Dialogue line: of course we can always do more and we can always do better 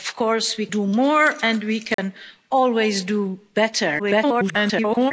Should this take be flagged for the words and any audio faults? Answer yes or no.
yes